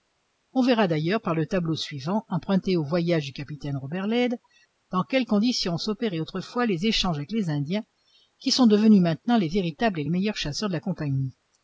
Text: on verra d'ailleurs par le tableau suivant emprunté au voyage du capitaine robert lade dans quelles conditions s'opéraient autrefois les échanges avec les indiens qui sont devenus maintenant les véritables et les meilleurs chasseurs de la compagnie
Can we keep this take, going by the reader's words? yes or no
yes